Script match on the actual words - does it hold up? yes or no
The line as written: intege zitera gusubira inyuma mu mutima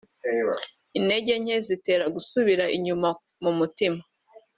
no